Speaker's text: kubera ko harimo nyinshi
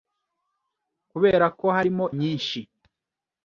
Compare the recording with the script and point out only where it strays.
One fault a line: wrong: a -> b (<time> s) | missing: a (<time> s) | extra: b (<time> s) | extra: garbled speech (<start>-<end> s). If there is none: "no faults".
no faults